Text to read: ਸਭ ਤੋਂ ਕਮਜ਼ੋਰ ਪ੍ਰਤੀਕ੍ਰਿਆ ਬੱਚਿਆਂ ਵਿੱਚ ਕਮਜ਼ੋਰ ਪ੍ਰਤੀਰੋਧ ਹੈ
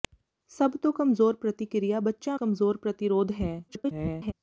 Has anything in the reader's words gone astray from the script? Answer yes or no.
yes